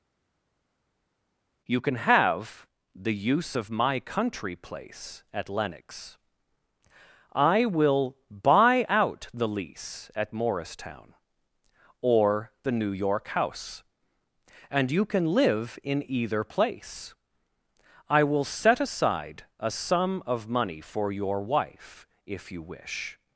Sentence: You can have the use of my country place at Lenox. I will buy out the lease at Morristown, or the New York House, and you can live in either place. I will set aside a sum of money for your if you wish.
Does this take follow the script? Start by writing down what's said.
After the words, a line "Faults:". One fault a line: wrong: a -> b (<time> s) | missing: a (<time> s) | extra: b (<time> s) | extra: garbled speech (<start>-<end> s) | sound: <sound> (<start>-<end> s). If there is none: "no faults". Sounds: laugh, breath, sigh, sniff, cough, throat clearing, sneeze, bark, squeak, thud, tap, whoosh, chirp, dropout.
You can have the use of my country place at Lenox. I will buy out the lease at Morristown, or the New York House, and you can live in either place. I will set aside a sum of money for your wife, if you wish.
Faults:
extra: wife (21.4 s)